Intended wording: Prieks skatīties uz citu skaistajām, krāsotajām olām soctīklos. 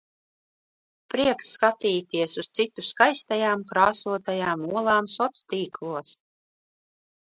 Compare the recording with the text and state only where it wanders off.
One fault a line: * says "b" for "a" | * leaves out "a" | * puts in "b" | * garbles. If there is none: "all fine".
all fine